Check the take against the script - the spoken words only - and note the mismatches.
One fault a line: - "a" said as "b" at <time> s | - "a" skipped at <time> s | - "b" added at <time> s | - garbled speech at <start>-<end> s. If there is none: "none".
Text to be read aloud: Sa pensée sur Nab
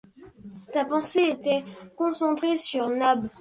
- "était concentrée" added at 1.3 s